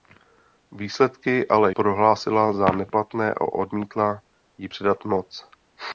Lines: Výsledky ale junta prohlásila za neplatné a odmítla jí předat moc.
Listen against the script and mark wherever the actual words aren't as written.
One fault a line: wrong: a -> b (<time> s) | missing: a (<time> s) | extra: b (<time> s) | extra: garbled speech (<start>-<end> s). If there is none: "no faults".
missing: junta (1.7 s)